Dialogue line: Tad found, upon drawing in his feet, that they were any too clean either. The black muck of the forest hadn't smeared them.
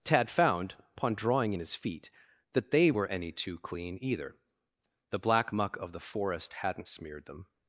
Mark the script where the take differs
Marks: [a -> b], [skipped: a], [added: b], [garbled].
Tad found, upon drawing in his feet, that they were any too clean either. The black muck of the forest hadn't smeared them.